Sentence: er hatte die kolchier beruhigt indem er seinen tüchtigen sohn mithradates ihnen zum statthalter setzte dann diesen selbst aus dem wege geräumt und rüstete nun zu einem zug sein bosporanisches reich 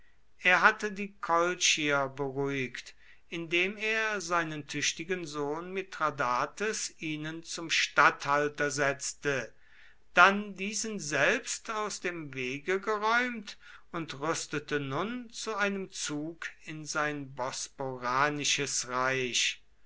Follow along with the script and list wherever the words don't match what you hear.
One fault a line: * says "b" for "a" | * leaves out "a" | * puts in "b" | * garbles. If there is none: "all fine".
* puts in "in"